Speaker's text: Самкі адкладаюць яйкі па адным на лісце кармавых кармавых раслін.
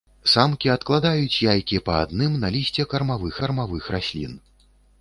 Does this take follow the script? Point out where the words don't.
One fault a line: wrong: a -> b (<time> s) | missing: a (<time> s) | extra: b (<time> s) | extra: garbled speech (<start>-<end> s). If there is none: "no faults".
no faults